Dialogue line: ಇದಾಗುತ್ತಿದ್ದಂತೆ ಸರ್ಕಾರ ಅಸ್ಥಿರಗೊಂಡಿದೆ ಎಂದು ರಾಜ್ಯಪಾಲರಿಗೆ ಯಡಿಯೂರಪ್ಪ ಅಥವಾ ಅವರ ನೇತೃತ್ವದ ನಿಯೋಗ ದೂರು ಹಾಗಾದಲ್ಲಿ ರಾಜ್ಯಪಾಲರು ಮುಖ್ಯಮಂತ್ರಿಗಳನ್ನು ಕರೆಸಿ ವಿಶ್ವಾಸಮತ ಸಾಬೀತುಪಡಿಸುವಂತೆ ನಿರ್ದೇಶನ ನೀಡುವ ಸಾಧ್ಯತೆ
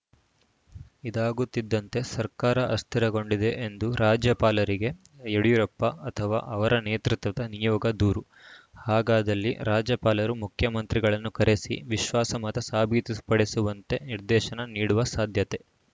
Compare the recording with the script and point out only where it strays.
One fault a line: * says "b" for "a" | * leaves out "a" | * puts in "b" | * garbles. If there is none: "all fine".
all fine